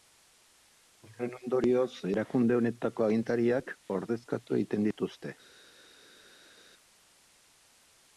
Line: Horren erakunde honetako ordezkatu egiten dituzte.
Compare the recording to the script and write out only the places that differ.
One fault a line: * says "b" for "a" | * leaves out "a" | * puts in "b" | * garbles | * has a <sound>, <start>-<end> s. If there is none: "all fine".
* puts in "ondorioz"
* puts in "agintariak"